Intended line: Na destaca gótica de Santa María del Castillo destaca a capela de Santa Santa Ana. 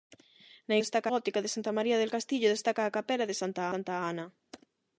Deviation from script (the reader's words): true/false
false